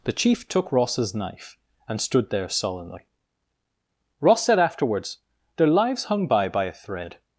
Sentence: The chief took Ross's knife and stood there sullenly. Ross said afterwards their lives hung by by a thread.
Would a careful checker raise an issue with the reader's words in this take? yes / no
no